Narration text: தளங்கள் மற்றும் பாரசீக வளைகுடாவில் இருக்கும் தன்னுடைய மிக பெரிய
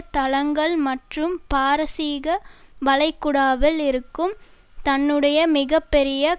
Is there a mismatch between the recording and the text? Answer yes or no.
no